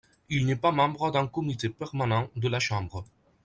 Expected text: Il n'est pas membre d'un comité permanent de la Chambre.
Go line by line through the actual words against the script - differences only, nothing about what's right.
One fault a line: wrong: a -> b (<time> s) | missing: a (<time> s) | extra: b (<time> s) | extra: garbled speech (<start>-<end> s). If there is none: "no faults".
no faults